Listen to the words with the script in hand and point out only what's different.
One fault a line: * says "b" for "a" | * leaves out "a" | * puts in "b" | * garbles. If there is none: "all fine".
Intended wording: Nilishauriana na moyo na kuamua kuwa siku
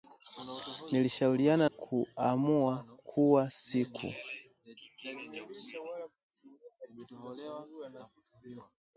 * leaves out "na moyo na"